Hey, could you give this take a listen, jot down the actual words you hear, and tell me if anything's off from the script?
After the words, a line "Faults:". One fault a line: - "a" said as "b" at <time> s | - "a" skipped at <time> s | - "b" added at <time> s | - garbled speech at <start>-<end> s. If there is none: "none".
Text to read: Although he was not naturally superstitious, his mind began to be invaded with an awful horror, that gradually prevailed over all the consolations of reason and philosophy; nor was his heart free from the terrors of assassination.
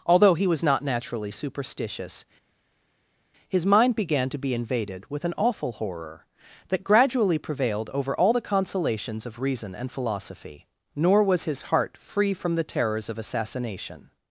Although he was not naturally superstitious, his mind began to be invaded with an awful horror, that gradually prevailed over all the consolations of reason and philosophy; nor was his heart free from the terrors of assassination.
Faults:
none